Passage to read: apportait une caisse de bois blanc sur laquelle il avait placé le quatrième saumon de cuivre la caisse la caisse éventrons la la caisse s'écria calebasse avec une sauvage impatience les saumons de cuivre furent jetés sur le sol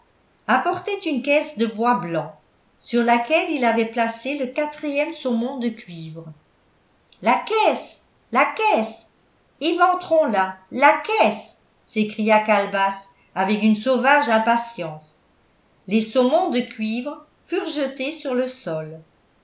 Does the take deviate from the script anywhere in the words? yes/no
no